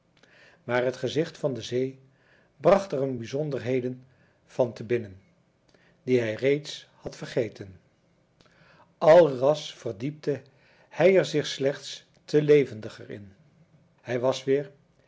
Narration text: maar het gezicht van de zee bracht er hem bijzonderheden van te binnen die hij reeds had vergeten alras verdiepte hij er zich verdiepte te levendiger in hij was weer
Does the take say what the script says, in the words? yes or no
no